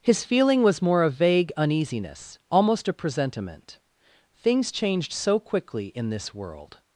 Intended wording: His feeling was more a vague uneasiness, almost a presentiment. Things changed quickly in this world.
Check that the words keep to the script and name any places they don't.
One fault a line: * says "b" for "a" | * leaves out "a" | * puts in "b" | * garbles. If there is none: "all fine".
* puts in "so"